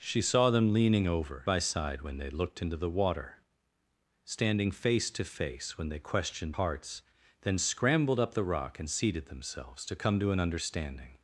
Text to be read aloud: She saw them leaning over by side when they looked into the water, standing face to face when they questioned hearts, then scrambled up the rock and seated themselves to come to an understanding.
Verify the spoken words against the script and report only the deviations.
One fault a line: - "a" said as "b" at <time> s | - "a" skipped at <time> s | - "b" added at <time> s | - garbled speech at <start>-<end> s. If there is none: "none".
none